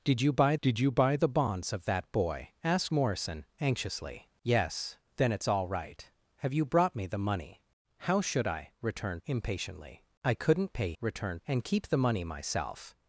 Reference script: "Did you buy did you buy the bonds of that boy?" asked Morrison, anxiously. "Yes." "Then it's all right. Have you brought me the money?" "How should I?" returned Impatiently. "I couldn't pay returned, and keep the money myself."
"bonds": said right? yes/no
yes